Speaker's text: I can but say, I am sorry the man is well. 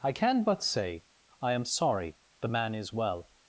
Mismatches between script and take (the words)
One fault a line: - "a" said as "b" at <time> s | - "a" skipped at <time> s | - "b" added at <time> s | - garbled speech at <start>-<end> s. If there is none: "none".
none